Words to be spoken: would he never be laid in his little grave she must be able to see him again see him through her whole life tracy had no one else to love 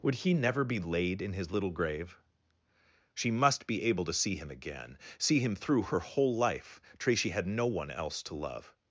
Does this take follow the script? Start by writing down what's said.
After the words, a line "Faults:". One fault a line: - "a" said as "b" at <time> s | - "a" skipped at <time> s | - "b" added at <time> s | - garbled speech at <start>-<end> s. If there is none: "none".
would he never be laid in his little grave she must be able to see him again see him through her whole life tracy had no one else to love
Faults:
none